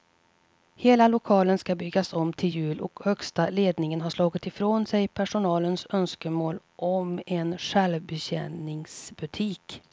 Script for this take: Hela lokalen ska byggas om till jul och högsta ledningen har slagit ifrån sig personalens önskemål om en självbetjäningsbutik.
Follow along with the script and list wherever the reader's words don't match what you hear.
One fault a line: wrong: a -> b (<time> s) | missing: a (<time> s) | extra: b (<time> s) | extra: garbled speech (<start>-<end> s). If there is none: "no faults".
no faults